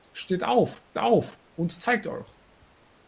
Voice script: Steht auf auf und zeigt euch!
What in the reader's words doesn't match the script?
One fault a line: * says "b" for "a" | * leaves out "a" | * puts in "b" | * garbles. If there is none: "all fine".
all fine